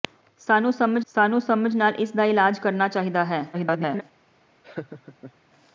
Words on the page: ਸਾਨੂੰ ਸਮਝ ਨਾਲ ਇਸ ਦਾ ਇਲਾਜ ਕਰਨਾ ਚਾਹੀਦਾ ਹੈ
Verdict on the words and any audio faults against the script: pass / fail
fail